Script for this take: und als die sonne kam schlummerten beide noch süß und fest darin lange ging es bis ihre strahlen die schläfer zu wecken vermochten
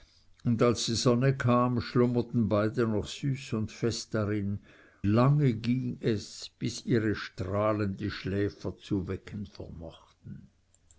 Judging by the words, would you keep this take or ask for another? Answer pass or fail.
pass